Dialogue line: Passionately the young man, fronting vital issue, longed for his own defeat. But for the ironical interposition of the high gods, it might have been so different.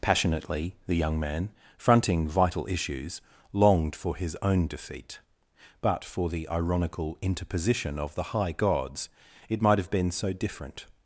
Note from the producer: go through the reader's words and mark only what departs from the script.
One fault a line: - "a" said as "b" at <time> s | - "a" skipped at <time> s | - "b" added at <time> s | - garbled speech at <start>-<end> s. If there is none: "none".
- "issue" said as "issues" at 2.7 s